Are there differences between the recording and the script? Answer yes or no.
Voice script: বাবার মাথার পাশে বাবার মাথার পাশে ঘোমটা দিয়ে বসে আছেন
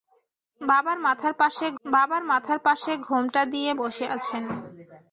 no